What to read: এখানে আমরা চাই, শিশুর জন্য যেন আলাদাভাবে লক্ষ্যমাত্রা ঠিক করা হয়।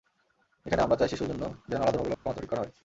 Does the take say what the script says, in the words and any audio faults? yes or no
no